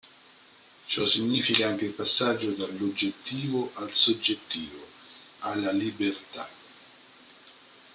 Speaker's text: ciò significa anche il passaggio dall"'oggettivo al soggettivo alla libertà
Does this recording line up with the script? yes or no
yes